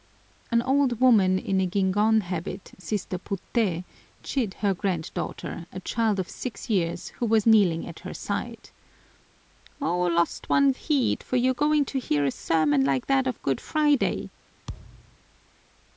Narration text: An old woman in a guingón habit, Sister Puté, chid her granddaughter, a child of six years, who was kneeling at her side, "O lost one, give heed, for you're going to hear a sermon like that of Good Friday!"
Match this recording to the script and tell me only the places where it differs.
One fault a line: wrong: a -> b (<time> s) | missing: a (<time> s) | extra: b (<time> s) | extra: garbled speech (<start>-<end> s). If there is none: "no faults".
missing: give (10.7 s)